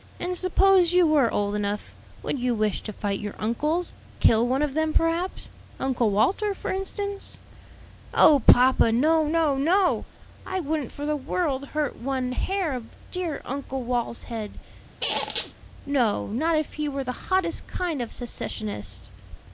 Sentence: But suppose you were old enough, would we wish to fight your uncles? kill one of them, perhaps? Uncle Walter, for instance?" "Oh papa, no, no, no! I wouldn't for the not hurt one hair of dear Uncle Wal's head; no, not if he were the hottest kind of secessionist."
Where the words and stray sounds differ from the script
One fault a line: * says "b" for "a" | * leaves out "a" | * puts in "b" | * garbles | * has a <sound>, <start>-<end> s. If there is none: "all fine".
* says "And" for "But"
* says "you" for "we"
* says "world" for "not"
* has a squeak, 15.0-15.5 s